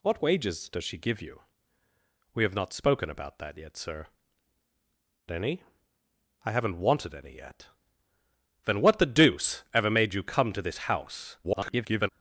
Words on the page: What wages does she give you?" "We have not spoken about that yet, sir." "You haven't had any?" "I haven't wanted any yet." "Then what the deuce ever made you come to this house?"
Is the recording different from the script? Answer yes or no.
yes